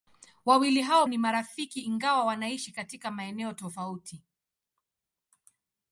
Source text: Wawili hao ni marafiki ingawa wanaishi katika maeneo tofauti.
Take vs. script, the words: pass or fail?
pass